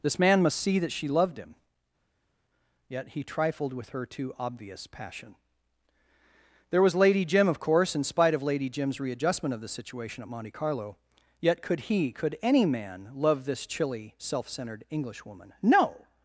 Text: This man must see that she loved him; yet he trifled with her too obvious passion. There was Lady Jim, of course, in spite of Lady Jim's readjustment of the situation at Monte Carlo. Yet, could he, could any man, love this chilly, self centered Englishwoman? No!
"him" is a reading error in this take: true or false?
false